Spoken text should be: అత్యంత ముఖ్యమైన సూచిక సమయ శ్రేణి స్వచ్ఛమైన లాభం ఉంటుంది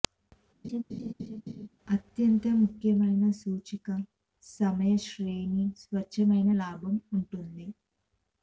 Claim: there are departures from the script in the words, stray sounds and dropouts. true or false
true